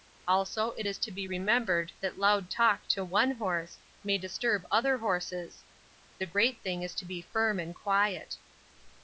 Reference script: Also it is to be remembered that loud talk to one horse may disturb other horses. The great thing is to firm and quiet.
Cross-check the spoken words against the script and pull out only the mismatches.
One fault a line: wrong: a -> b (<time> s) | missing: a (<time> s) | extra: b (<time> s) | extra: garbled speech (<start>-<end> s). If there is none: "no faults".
extra: be (7.0 s)